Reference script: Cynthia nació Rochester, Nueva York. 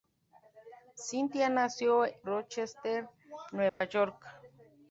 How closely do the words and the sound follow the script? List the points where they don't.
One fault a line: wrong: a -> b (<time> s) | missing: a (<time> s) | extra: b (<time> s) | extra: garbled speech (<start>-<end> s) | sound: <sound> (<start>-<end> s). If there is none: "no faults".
sound: dropout (3.7-3.8 s)